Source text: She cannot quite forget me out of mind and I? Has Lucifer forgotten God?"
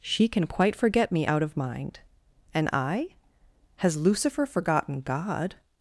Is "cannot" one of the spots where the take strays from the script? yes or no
yes